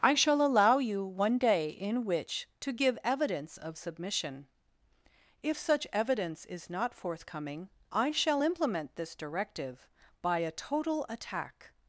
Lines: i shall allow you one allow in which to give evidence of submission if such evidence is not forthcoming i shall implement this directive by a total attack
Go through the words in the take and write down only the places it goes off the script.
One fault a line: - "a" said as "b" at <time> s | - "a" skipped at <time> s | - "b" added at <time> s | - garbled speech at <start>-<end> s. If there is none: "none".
- "allow" said as "day" at 1.4 s